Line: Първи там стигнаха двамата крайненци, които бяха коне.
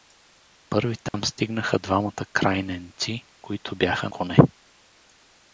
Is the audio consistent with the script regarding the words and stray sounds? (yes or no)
no